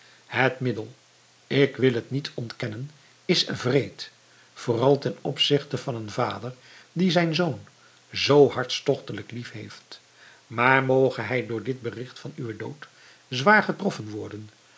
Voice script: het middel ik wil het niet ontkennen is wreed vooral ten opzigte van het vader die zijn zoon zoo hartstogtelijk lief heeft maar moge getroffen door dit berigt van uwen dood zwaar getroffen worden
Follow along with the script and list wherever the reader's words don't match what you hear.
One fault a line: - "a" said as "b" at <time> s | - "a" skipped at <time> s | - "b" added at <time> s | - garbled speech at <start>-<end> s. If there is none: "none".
- "het" said as "een" at 6.0 s
- "getroffen" said as "hij" at 11.2 s